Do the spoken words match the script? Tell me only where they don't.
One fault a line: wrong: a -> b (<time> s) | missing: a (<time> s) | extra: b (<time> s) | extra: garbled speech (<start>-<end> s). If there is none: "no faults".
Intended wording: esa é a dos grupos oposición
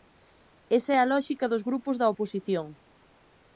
extra: lóxica (1.1 s)
extra: da (2.0 s)